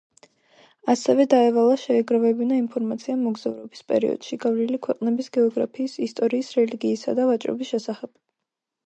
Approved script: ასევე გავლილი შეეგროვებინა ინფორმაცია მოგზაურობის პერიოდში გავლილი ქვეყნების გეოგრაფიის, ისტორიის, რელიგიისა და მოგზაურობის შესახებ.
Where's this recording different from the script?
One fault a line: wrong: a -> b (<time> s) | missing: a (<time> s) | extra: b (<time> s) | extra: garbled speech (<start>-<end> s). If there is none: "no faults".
wrong: გავლილი -> დაევალა (1.3 s)
wrong: მოგზაურობის -> ვაჭრობის (7.3 s)